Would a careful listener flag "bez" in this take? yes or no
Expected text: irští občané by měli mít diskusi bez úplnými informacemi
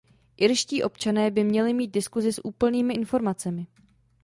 yes